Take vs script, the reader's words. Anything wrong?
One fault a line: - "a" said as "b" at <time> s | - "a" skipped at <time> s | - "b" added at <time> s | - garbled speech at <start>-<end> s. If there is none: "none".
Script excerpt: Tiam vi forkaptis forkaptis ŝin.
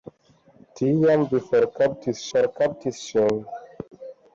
none